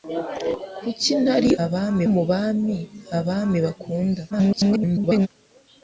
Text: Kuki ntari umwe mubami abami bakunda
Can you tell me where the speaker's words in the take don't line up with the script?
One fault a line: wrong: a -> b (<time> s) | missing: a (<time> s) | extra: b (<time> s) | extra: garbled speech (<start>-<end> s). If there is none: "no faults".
wrong: umwe -> abami (1.6 s)
extra: garbled speech (4.3-5.3 s)